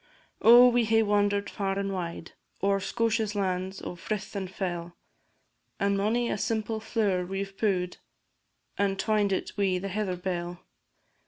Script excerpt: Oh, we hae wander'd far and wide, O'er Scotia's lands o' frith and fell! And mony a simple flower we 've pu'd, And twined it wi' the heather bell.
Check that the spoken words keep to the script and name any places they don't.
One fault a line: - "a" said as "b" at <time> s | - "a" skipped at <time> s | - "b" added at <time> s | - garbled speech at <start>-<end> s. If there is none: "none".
none